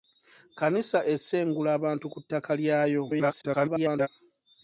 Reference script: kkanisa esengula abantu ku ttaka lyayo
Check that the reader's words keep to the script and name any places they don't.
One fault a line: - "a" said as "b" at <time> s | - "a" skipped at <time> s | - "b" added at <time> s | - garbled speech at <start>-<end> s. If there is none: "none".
- garbled speech at 3.1-4.1 s